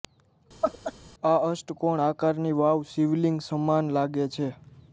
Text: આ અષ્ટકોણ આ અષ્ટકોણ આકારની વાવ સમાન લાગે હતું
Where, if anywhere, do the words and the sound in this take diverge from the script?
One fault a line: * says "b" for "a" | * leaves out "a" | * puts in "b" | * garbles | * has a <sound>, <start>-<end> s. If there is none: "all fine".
* has a laugh, 0.6-0.9 s
* leaves out "આ અષ્ટકોણ"
* puts in "શિવલિંગ"
* says "છે" for "હતું"